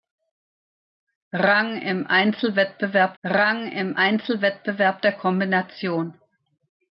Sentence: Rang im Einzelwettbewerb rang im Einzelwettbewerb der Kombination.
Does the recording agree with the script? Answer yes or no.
yes